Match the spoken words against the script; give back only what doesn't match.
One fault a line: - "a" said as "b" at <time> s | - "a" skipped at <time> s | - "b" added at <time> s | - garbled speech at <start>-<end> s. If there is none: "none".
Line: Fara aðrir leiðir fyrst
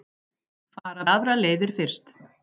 none